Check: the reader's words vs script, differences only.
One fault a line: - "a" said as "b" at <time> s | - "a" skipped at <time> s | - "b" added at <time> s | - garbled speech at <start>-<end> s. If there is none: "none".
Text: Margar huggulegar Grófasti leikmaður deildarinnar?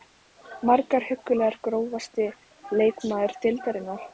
none